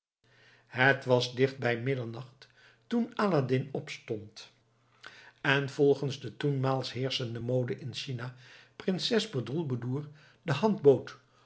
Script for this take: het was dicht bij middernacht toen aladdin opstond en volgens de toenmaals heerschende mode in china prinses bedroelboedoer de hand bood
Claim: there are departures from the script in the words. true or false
false